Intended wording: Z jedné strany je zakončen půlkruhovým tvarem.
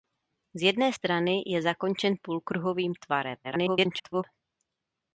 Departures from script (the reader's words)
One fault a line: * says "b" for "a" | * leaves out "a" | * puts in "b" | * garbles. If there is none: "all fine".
* garbles